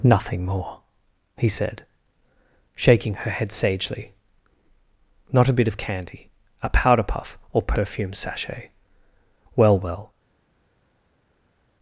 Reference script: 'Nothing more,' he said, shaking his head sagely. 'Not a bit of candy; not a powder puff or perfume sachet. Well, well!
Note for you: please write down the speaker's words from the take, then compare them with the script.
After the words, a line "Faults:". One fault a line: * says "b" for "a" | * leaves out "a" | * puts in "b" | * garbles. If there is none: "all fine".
'Nothing more,' he said, shaking her head sagely. 'Not a bit of candy; a powder puff or perfume sachet. Well, well!
Faults:
* says "her" for "his"
* leaves out "not"